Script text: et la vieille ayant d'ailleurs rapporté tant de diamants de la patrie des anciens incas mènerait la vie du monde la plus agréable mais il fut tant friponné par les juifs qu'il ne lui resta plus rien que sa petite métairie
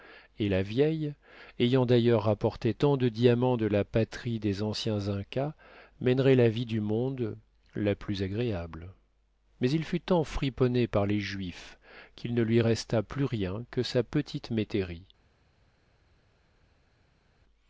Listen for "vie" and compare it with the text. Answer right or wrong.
right